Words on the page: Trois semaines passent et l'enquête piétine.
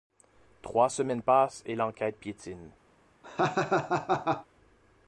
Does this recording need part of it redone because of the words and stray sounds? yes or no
yes